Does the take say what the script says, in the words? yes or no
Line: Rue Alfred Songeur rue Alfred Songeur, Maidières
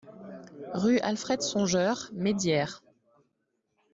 no